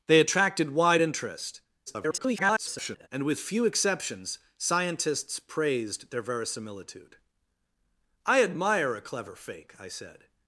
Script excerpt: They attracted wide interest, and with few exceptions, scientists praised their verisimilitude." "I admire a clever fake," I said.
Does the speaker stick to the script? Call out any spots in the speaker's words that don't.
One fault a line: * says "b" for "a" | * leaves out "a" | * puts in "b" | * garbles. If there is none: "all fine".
* garbles